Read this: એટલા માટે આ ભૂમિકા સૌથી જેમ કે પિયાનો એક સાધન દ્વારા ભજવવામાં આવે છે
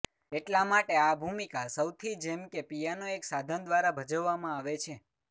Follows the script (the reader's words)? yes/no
yes